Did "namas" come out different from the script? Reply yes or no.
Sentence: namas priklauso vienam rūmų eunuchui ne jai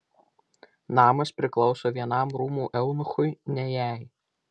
no